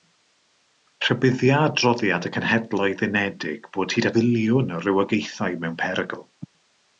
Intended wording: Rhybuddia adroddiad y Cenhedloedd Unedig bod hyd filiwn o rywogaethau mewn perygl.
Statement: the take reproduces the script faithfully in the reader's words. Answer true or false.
true